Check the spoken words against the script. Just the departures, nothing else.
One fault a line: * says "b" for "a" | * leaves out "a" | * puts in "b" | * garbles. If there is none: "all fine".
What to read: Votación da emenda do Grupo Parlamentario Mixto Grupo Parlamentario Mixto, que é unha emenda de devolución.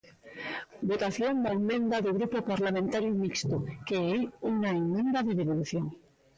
* leaves out "Grupo Parlamentario Mixto"